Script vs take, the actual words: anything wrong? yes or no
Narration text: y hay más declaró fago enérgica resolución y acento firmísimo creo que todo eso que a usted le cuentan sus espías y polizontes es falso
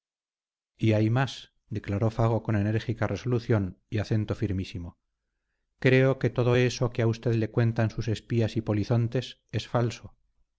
yes